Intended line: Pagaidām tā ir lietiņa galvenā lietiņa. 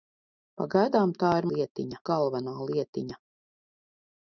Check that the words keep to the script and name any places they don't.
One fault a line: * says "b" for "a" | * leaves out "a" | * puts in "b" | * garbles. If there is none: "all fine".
all fine